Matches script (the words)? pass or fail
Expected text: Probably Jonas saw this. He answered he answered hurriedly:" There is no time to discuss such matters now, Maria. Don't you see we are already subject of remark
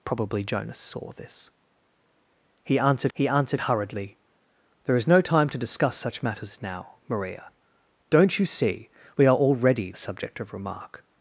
pass